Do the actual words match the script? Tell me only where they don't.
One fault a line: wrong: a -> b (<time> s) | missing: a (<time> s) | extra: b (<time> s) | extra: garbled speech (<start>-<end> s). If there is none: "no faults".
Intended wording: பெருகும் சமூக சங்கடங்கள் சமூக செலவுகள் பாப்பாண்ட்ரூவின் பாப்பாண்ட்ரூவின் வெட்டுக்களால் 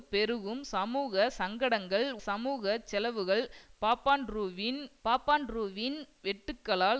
no faults